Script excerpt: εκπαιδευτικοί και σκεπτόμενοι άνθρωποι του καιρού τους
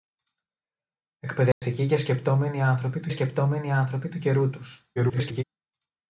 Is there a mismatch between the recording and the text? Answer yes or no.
yes